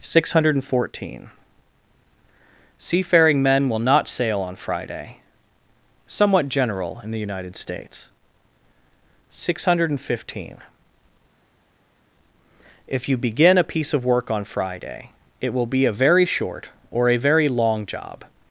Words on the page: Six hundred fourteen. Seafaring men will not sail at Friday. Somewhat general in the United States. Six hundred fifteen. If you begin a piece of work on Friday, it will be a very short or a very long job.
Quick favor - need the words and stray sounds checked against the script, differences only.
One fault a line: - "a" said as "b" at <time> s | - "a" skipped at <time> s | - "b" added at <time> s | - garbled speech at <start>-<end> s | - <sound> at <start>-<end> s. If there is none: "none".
- "at" said as "on" at 4.4 s